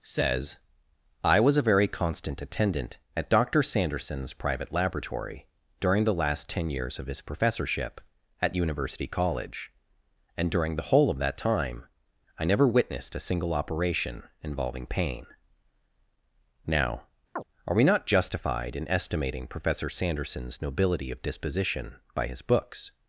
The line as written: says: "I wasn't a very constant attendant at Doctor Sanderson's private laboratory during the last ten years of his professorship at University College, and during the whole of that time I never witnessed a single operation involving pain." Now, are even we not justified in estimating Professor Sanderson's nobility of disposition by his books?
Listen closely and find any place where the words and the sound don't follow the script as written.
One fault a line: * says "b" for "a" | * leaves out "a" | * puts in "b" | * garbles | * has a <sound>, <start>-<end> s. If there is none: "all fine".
* says "was" for "wasn't"
* has a chirp, 17.4-17.4 s
* leaves out "even"